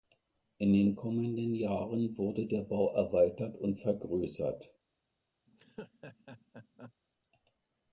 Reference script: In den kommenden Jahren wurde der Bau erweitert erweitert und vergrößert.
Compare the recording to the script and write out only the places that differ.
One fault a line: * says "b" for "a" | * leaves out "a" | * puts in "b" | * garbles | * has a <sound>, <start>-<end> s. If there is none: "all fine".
* leaves out "erweitert"
* has a laugh, 5.5-6.9 s